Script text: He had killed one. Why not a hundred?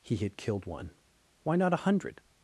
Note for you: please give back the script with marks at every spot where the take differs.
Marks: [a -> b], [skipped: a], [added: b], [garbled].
He had killed one. Why not a hundred?